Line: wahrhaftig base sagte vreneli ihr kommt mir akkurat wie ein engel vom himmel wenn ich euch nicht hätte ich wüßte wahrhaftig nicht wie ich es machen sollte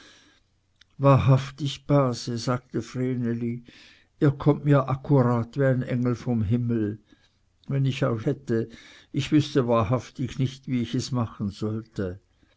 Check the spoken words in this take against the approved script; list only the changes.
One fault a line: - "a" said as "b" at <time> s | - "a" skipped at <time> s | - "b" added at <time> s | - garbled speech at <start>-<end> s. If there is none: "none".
- "nicht" skipped at 8.3 s